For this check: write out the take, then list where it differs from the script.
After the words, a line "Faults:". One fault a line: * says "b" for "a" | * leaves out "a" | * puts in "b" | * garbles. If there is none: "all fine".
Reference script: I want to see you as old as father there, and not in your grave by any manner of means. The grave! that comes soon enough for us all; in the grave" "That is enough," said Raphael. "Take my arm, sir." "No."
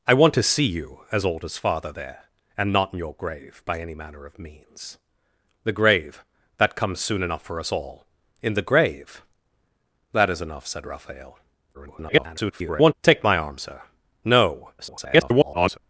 I want to see you as old as father there, and not in your grave by any manner of means. The grave! that comes soon enough for us all; in the grave" "That is enough," said Raphael. [garbled] "Take my arm, sir." "No." [garbled]
Faults:
* garbles
* garbles